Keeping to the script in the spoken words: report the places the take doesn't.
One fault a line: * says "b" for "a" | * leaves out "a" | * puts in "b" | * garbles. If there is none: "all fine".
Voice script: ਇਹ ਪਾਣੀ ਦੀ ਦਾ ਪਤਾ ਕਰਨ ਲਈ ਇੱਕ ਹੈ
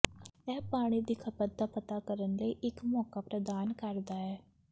* puts in "ਖਪਤ"
* puts in "ਮੌਕਾ ਪ੍ਰਦਾਨ ਕਰਦਾ"